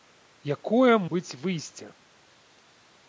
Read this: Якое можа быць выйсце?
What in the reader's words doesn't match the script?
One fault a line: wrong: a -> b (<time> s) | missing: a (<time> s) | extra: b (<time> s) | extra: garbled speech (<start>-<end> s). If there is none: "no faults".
missing: можа (0.9 s)